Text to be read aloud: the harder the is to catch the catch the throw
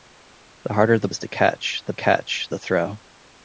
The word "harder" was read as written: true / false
true